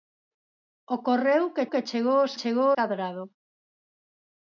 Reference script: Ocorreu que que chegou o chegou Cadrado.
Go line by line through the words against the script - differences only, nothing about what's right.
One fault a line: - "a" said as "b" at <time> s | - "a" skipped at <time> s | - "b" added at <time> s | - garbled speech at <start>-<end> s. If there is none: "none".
none